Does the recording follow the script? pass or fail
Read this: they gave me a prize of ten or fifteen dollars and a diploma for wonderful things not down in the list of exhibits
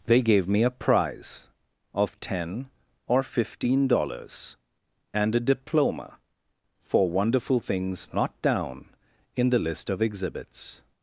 pass